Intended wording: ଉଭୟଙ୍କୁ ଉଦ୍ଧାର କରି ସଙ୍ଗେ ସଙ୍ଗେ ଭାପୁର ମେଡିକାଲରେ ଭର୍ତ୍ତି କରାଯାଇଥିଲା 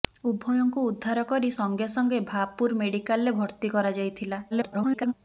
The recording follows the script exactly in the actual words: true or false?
false